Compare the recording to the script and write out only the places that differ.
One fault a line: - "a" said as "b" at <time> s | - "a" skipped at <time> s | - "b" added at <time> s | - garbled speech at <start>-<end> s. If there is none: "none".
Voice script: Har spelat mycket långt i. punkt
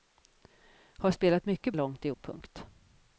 none